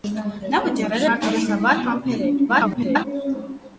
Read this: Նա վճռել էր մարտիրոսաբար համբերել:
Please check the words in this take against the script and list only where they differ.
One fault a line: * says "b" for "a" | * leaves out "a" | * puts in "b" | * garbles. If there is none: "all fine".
* leaves out "էր"
* garbles